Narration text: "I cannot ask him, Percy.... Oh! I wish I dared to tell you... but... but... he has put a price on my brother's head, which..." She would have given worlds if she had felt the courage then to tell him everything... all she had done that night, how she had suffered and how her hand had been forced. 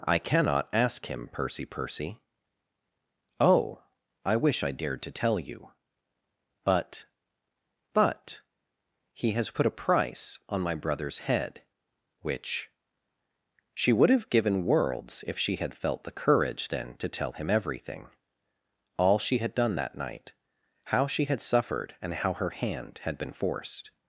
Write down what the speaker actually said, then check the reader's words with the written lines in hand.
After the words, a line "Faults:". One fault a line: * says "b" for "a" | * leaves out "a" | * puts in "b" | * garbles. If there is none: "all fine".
"I cannot ask him, Percy Percy.... Oh! I wish I dared to tell you... but... but... he has put a price on my brother's head, which..." She would have given worlds if she had felt the courage then to tell him everything... all she had done that night, how she had suffered and how her hand had been forced.
Faults:
* puts in "Percy"